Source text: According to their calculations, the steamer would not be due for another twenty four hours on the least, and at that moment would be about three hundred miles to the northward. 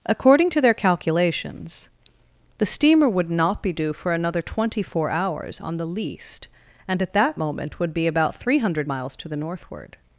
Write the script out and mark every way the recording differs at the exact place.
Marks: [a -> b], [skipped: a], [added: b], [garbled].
According to their calculations, the steamer would not be due for another twenty four hours on the least, and at that moment would be about three hundred miles to the northward.